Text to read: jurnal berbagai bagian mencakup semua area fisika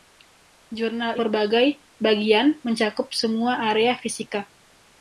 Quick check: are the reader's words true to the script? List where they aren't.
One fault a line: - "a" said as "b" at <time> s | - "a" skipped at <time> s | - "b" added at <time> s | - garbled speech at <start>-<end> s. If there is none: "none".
none